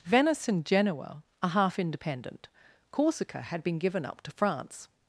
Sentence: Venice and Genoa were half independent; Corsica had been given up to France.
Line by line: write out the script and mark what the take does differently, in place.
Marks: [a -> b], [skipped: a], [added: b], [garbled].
Venice and Genoa [were -> are] half independent; Corsica had been given up to France.